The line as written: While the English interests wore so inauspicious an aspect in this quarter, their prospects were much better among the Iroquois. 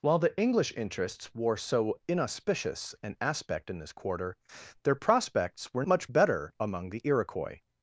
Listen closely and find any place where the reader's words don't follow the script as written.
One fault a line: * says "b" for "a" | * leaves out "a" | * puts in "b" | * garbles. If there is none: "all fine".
all fine